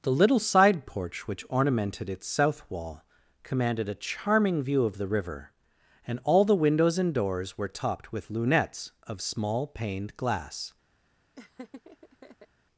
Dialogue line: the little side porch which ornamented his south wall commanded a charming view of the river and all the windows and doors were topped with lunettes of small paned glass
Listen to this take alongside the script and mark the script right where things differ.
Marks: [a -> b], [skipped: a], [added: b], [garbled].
the little side porch which ornamented [his -> its] south wall commanded a charming view of the river and all the windows and doors were topped with lunettes of small paned glass